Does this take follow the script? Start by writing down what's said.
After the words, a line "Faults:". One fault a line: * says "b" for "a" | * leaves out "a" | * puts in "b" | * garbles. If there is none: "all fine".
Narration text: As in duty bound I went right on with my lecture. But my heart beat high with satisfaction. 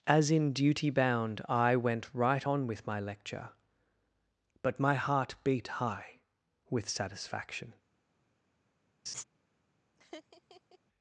As in duty bound I went right on with my lecture. But my heart beat high with satisfaction.
Faults:
all fine